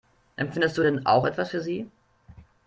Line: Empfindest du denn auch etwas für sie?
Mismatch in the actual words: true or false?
false